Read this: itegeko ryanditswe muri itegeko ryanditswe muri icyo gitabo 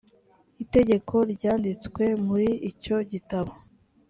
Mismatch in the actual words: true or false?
true